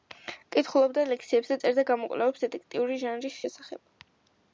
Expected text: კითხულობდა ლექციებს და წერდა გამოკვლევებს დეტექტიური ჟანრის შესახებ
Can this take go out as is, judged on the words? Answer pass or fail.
pass